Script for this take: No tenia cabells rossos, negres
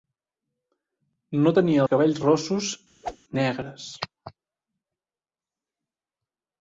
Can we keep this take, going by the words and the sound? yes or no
no